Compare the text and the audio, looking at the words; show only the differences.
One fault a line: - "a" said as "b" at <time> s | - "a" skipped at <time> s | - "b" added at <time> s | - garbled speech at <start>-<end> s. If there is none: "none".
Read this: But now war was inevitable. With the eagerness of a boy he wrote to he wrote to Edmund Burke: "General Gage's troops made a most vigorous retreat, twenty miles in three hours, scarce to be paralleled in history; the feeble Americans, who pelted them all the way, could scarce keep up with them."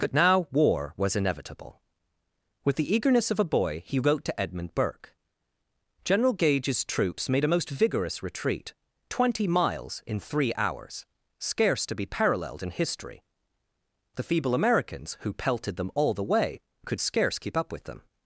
- "he wrote to" skipped at 4.4 s